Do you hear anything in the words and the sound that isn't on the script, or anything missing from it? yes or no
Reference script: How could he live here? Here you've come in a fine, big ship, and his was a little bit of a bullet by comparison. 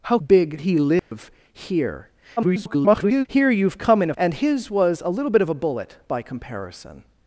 yes